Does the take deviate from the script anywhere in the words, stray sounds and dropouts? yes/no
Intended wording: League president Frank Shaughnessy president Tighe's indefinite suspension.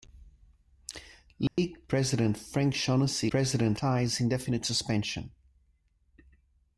yes